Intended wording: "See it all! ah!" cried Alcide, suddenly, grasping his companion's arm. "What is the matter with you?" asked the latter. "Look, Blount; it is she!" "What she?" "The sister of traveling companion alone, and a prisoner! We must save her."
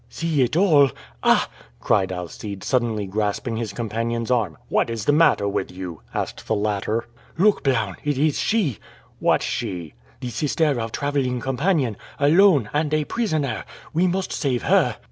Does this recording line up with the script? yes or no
yes